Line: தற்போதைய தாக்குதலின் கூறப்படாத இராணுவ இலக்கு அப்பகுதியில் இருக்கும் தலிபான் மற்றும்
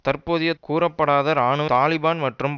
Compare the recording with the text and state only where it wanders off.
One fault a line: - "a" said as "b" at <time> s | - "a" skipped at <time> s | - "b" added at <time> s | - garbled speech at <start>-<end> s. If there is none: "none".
- "தாக்குதலின்" skipped at 0.5 s
- "இலக்கு அப்பகுதியில் இருக்கும்" skipped at 1.7 s